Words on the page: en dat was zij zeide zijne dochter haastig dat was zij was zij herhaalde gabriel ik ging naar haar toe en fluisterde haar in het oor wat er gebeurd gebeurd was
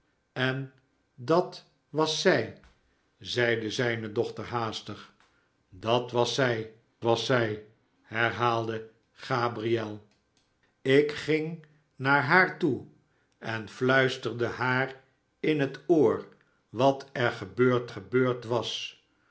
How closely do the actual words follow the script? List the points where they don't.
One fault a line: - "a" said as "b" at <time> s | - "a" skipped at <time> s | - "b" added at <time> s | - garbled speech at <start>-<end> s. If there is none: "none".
none